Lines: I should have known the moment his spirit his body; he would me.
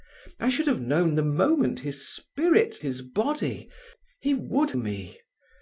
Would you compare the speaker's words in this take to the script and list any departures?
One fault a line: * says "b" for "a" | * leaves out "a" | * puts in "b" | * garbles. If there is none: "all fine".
all fine